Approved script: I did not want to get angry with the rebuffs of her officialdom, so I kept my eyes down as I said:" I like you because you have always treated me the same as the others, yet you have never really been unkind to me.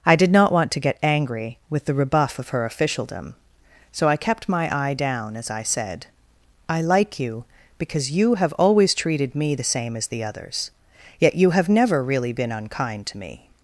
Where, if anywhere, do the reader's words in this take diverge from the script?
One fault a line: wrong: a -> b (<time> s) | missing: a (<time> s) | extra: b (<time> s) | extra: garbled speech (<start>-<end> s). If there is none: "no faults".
wrong: rebuffs -> rebuff (1.9 s)
wrong: eyes -> eye (4.8 s)